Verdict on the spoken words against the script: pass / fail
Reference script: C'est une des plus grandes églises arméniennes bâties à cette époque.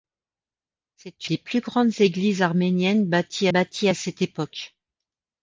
fail